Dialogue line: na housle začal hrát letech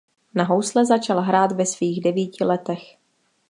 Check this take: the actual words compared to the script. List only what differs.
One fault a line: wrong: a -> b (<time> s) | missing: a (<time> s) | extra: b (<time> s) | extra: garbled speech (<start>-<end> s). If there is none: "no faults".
extra: ve svých devíti (1.5 s)